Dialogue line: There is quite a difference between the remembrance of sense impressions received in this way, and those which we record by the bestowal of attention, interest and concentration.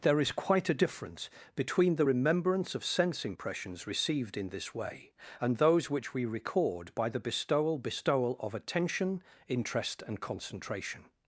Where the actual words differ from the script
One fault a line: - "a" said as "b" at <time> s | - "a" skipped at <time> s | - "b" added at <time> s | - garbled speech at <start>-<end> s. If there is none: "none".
- "bestowal" added at 7.8 s